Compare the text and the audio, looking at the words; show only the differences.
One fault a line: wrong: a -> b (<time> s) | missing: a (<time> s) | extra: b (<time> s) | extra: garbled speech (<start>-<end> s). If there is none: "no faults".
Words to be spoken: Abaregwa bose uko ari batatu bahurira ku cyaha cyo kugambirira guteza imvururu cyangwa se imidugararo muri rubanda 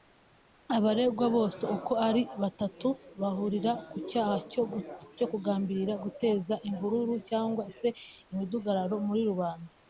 no faults